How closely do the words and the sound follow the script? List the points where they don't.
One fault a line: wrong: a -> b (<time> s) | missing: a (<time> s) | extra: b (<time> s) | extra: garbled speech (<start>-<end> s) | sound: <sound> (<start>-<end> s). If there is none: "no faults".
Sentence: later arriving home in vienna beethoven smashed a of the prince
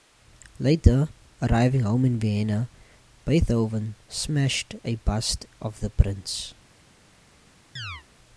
extra: bust (5.0 s)
sound: chirp (7.8-8.0 s)